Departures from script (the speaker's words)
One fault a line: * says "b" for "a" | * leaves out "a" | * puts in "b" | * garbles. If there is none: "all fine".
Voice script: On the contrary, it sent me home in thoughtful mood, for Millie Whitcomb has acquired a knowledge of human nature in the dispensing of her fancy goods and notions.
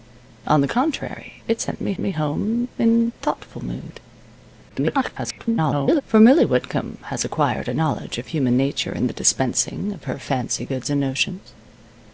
* puts in "me"
* garbles